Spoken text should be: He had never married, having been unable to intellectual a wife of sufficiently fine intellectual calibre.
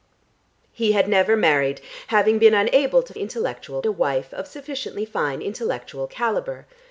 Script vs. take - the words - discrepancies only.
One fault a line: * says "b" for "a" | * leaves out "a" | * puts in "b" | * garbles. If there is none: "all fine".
all fine